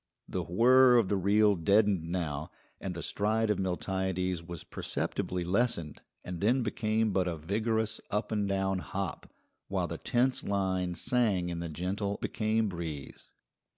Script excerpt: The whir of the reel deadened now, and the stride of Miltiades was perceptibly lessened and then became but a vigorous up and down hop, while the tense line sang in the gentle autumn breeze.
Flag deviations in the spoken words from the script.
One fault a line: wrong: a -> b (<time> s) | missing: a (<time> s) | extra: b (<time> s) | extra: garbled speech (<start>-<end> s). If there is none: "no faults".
wrong: autumn -> became (12.2 s)